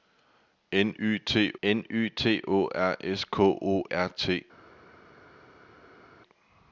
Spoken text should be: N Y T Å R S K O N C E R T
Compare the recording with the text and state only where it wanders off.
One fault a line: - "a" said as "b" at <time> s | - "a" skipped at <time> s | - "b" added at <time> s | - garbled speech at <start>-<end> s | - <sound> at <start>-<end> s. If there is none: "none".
- "n Y T" added at 1.6 s
- "N C E" skipped at 3.8 s